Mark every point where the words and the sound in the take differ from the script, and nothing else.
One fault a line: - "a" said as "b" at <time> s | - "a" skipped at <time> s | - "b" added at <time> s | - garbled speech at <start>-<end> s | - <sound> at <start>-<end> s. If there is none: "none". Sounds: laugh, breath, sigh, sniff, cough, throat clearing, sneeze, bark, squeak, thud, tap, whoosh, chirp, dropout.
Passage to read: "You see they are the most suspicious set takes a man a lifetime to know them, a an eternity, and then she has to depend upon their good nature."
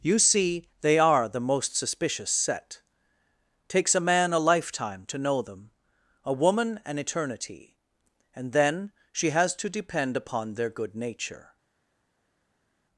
- "woman" added at 6.3 s